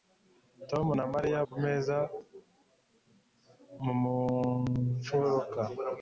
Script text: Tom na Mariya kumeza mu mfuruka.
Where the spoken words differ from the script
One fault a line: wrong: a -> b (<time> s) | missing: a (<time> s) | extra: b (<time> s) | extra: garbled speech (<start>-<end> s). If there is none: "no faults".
no faults